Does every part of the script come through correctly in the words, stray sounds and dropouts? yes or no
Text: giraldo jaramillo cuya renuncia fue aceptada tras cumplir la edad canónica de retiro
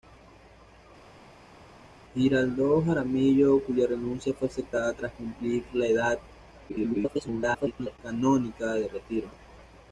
no